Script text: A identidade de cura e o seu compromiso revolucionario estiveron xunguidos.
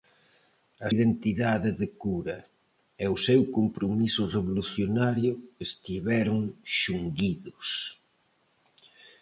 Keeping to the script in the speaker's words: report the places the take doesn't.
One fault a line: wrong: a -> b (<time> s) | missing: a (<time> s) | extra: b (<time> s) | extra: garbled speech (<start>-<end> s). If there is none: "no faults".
no faults